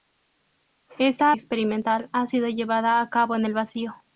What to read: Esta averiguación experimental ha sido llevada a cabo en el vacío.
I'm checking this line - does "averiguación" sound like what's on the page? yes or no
no